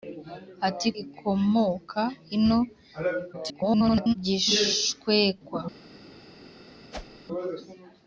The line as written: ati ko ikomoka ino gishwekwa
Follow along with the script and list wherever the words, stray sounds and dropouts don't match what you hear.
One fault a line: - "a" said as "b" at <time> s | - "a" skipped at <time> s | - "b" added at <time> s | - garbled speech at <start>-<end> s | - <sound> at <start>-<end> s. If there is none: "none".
- "ko" skipped at 0.9 s
- garbled speech at 3.3-4.1 s
- whoosh at 6.9-7.2 s